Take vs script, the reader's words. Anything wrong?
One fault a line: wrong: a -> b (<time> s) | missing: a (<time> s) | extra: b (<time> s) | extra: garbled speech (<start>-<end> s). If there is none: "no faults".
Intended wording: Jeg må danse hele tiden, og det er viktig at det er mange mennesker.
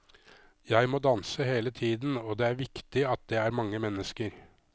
no faults